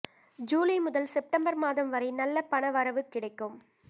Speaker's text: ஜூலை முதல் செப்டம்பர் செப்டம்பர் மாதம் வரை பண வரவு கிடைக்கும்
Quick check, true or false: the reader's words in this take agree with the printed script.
false